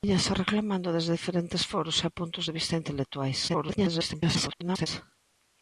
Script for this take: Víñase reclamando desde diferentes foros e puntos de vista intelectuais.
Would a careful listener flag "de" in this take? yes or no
no